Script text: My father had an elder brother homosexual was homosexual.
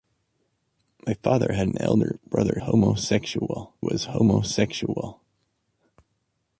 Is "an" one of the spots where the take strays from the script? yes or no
no